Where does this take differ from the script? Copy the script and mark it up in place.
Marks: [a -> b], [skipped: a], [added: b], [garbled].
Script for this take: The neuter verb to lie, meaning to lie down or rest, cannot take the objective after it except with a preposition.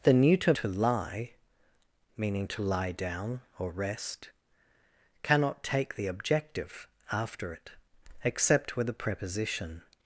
The neuter [skipped: verb] to lie, meaning to lie down or rest, cannot take the objective after it except with a preposition.